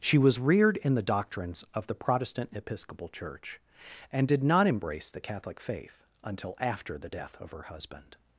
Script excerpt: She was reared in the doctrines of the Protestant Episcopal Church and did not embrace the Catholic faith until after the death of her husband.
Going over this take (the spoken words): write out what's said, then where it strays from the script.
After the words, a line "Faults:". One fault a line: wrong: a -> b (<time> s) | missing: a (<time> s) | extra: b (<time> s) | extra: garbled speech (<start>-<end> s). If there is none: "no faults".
She was reared in the doctrines of the Protestant Episcopal Church and did not embrace the Catholic faith until after the death of her husband.
Faults:
no faults